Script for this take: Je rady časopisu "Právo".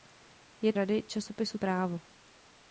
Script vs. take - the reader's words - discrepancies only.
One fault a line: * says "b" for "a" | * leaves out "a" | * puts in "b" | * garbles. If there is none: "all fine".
all fine